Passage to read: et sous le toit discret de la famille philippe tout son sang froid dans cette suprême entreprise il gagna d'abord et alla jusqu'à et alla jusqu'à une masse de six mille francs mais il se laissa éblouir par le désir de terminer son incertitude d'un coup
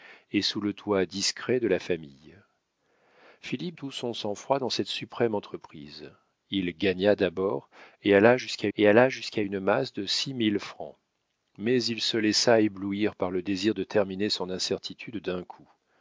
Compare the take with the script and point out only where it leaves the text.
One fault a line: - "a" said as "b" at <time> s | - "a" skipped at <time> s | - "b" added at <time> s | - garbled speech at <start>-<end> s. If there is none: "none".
none